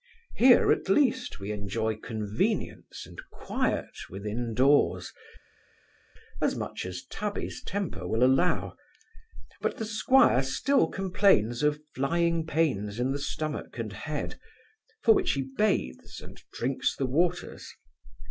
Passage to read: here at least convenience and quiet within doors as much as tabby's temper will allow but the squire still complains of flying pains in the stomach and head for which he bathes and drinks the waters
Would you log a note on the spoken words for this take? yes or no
yes